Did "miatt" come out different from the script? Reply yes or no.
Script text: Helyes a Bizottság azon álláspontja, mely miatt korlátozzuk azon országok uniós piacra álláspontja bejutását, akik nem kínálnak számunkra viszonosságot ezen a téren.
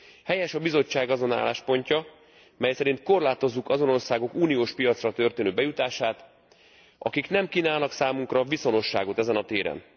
yes